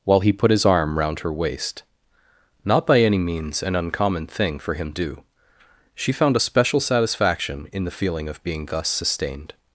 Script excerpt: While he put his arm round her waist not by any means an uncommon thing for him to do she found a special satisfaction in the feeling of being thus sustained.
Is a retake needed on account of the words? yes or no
yes